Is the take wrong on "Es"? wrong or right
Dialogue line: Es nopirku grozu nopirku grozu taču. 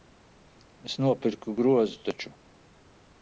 right